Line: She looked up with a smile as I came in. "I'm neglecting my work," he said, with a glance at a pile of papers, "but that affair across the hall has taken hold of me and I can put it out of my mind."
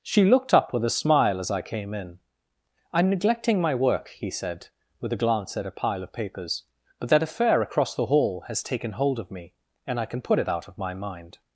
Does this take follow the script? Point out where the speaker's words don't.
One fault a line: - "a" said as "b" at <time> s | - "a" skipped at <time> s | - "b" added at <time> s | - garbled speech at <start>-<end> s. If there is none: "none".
none